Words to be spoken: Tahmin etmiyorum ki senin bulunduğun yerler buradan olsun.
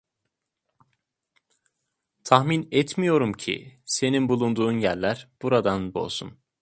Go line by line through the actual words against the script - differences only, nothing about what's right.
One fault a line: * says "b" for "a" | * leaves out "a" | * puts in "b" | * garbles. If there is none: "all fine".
all fine